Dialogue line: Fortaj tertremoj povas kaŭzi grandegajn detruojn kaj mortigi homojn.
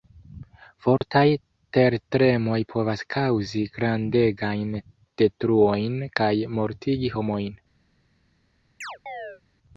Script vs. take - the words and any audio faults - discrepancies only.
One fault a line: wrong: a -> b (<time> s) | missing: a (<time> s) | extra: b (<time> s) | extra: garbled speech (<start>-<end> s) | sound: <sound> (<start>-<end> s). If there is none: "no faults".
sound: dropout (1.0-1.0 s)
sound: chirp (8.8-9.4 s)